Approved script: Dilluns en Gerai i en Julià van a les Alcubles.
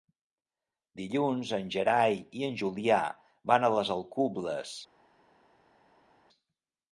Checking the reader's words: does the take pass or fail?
pass